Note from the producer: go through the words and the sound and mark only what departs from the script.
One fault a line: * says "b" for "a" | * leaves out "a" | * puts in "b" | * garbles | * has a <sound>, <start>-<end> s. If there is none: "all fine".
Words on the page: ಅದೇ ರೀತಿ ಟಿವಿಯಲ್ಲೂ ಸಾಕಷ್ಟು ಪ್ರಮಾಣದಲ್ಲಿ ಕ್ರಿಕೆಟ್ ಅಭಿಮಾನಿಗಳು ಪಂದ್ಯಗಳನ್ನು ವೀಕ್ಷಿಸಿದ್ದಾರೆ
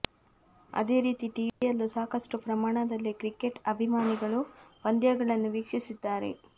* has a dropout, 1.5-1.6 s